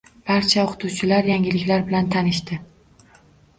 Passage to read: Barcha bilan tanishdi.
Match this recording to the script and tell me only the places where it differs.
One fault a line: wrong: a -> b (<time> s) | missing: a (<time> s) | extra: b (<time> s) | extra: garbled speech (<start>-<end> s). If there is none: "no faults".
extra: o‘qituvchilar yangiliklar (0.6 s)